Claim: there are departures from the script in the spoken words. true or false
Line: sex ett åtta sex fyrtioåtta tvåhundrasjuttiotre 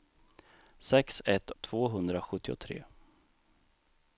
true